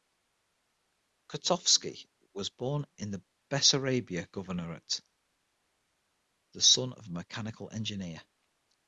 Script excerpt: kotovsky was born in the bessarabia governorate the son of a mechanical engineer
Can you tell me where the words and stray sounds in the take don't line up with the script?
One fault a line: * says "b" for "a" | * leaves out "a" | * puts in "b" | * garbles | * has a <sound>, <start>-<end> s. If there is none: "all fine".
all fine